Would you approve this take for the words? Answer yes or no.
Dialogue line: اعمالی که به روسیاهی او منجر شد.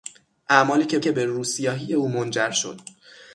no